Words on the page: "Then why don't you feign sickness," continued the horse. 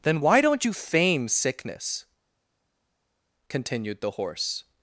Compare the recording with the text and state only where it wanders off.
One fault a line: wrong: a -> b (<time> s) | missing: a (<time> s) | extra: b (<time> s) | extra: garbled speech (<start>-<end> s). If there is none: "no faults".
no faults